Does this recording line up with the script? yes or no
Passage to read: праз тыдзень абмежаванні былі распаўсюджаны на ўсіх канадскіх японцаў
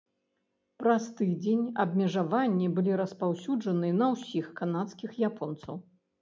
yes